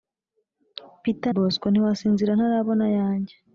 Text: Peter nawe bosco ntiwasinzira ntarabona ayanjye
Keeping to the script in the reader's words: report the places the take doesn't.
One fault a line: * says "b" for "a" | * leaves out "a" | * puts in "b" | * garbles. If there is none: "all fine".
* leaves out "nawe"